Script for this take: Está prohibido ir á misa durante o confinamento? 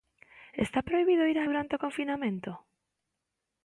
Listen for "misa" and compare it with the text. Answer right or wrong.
wrong